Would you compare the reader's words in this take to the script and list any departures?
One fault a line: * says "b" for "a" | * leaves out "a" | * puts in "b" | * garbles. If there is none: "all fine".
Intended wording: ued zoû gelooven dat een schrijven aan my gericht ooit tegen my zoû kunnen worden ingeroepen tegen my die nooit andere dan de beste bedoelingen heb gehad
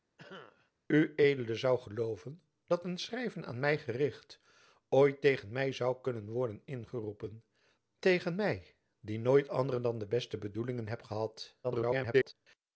* garbles